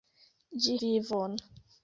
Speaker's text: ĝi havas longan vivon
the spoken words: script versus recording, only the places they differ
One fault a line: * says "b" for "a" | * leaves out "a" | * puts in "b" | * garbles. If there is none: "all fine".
* leaves out "havas longan"